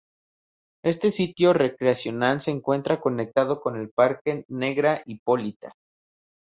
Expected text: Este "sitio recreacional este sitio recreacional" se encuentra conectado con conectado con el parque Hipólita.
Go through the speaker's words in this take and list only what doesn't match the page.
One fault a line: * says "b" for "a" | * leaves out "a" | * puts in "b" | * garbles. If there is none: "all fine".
* leaves out "este sitio recreacional"
* leaves out "conectado con"
* puts in "Negra"